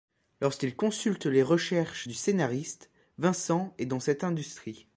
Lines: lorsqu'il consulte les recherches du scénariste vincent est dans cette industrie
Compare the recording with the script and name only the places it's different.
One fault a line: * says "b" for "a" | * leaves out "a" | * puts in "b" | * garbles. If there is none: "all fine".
all fine